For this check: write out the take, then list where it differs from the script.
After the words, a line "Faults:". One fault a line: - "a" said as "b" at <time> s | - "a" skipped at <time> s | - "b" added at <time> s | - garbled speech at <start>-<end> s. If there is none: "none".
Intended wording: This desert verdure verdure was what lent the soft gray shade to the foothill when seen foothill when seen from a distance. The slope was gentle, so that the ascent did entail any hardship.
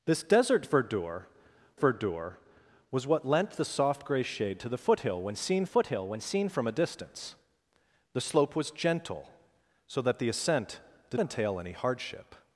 This desert verdure verdure was what lent the soft gray shade to the foothill when seen foothill when seen from a distance. The slope was gentle, so that the ascent did entail any hardship.
Faults:
none